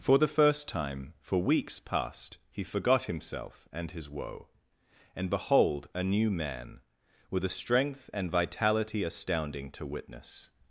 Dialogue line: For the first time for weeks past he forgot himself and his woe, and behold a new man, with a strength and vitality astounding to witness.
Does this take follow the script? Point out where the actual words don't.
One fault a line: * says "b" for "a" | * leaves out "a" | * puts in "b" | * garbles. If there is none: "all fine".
all fine